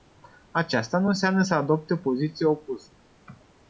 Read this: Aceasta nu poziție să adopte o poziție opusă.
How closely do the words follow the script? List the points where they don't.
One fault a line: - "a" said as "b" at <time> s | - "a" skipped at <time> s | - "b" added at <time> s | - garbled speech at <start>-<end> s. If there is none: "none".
- "poziție" said as "înseamnă" at 1.1 s